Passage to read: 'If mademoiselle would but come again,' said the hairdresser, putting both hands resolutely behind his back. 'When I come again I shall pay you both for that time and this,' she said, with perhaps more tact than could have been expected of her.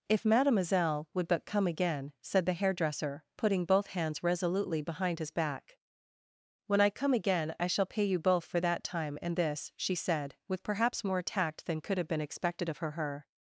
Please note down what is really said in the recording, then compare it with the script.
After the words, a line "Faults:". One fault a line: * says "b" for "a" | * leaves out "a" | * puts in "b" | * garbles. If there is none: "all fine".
'If mademoiselle would but come again,' said the hairdresser, putting both hands resolutely behind his back. 'When I come again I shall pay you both for that time and this,' she said, with perhaps more tact than could have been expected of her her.
Faults:
* puts in "her"